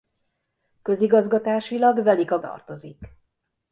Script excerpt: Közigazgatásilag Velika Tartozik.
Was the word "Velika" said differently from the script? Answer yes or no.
no